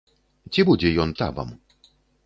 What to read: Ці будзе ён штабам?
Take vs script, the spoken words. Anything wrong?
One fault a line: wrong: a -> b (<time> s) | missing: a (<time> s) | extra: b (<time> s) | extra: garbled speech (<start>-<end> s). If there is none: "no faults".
no faults